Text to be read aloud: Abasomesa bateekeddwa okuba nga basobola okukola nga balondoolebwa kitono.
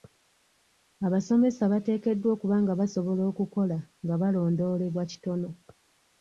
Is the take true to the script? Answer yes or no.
yes